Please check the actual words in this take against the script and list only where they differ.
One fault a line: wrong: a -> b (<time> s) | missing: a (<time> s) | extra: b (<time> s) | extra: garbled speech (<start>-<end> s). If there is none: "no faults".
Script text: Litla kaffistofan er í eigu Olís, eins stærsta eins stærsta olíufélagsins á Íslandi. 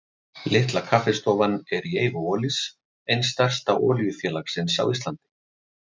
missing: eins stærsta (3.8 s)